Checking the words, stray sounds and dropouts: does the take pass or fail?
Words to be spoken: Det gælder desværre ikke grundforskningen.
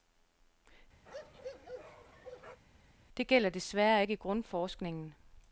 fail